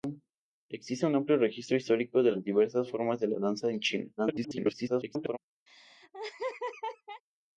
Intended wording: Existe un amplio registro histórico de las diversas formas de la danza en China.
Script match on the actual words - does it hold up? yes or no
no